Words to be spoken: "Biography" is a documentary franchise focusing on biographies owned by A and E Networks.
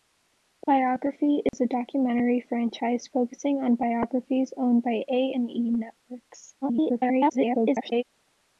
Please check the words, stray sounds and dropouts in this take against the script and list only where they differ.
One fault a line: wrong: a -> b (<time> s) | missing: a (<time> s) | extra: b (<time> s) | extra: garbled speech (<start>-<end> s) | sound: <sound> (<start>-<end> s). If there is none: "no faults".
sound: dropout (1.5-1.5 s)
extra: garbled speech (6.6-8.0 s)